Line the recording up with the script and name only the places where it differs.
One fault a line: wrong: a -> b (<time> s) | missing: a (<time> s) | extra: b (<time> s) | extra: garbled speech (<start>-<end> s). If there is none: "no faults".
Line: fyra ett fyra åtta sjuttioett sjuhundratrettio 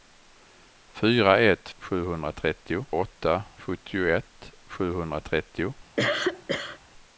wrong: fyra -> sjuhundratrettio (1.8 s)